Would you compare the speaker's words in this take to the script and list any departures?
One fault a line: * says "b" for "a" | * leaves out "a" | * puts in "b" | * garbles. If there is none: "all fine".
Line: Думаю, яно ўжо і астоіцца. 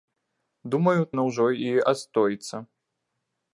all fine